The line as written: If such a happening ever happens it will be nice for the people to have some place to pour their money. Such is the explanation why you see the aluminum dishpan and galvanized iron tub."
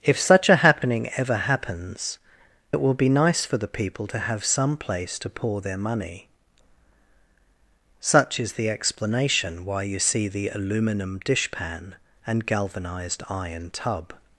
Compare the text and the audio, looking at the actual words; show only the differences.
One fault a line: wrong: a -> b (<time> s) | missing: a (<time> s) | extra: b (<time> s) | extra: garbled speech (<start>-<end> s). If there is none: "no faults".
no faults